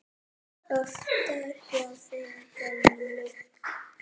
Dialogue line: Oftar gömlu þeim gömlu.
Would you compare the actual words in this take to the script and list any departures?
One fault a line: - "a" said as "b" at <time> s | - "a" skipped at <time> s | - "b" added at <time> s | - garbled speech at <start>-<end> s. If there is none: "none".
- "gömlu" said as "hjá" at 1.7 s